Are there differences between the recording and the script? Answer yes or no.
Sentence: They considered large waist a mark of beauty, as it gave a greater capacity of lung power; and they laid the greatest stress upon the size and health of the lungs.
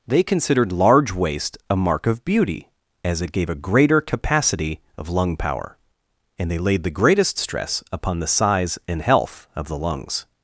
no